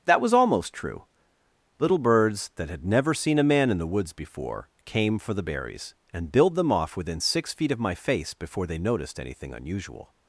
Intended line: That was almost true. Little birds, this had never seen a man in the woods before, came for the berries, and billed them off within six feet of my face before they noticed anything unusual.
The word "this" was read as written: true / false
false